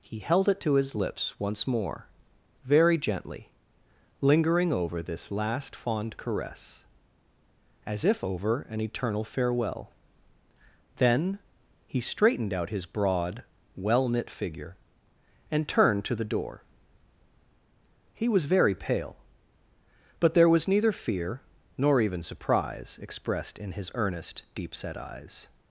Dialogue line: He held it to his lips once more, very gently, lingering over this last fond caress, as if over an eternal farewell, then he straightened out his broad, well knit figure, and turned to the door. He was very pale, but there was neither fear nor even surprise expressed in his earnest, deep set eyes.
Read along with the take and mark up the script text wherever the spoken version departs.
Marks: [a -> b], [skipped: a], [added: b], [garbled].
He held it to his lips once more, very gently, lingering over this last fond caress, as if over an eternal farewell, then he straightened out his broad, well knit figure, and turned to the door. He was very pale, but there was neither fear nor even surprise expressed in his earnest, deep set eyes.